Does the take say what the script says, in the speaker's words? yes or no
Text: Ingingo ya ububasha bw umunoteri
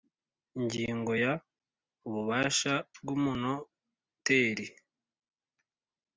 yes